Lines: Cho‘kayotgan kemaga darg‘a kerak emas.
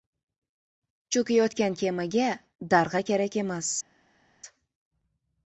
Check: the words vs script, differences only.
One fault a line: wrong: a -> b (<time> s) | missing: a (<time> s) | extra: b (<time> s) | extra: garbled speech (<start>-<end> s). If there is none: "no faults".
no faults